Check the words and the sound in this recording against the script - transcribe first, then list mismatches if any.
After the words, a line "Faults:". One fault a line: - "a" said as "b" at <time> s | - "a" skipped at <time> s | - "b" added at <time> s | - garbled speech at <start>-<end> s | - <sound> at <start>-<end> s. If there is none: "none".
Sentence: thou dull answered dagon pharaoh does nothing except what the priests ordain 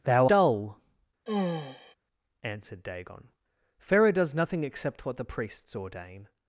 thou dull answered dagon pharaoh does nothing except what the priests ordain
Faults:
- sigh at 1.3-1.9 s